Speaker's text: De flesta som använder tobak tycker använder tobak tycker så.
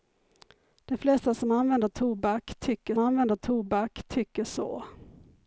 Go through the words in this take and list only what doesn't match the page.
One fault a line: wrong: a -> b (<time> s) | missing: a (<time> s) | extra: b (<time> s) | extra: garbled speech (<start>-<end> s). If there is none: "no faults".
no faults